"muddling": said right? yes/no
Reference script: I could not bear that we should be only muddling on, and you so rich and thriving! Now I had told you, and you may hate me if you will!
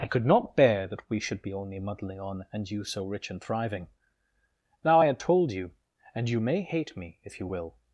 yes